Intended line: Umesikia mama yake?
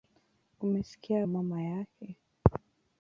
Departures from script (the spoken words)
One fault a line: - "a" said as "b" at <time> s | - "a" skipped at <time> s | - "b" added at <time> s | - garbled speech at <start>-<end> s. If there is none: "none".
none